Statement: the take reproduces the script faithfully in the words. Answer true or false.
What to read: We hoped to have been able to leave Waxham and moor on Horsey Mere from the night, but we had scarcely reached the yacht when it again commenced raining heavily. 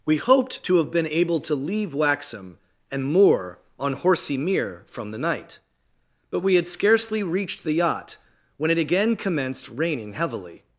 true